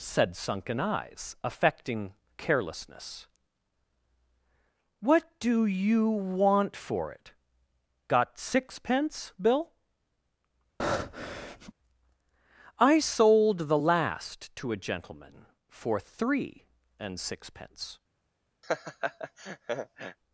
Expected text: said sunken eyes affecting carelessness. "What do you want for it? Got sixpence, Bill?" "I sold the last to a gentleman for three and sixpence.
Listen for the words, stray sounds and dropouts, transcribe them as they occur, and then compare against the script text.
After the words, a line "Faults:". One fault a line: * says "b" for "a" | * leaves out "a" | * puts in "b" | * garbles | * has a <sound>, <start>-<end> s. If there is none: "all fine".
said sunken eyes affecting carelessness. "What do you want for it? Got sixpence, Bill?" "I sold the last to a gentleman for three and sixpence.
Faults:
* has a breath, 10.8-11.7 s
* has a laugh, 18.6-20.2 s